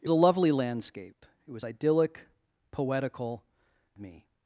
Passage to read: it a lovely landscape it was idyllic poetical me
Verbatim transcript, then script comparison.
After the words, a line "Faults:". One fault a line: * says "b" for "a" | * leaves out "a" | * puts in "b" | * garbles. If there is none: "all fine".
it a lovely landscape it was idyllic poetical me
Faults:
all fine